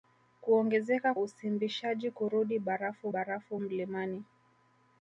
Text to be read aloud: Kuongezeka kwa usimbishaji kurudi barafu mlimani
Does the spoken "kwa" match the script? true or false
false